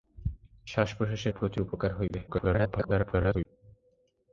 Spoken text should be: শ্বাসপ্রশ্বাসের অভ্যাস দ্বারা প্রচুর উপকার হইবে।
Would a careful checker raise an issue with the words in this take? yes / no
yes